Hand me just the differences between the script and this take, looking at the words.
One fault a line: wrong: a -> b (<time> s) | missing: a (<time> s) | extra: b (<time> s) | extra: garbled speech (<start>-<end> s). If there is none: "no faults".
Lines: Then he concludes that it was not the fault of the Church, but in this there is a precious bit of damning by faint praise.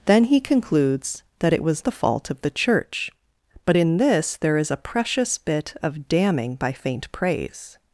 missing: not (1.9 s)